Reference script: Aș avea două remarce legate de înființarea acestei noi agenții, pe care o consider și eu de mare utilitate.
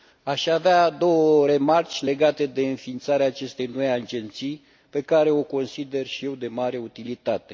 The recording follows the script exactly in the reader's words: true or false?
true